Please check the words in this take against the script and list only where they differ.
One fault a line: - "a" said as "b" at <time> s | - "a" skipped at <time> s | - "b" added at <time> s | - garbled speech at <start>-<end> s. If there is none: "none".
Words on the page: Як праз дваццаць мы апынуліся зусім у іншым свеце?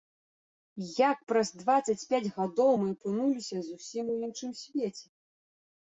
- "пяць гадоў" added at 2.1 s